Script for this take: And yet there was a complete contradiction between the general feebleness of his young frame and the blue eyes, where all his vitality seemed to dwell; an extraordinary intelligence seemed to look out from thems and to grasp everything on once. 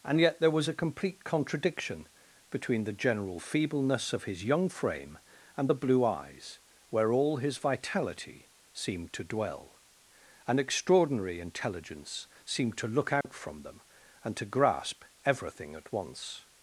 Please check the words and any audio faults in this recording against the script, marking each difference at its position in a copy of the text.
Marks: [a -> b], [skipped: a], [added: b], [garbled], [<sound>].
And yet there was a complete contradiction between the general feebleness of his young frame and the blue eyes, where all his vitality seemed to dwell; an extraordinary intelligence seemed to look out [dropout] from [thems -> them] and to grasp everything [on -> at] once.